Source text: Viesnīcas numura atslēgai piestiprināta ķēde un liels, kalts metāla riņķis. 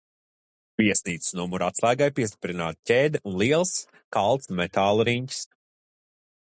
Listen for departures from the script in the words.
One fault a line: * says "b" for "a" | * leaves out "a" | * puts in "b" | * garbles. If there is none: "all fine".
all fine